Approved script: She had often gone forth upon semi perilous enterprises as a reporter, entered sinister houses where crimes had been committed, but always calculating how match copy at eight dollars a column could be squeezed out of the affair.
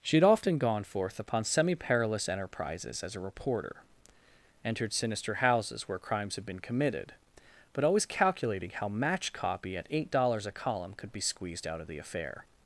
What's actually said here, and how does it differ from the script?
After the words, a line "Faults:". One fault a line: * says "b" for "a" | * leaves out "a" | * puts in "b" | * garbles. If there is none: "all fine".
She had often gone forth upon semi perilous enterprises as a reporter, entered sinister houses where crimes had been committed, but always calculating how match copy at eight dollars a column could be squeezed out of the affair.
Faults:
all fine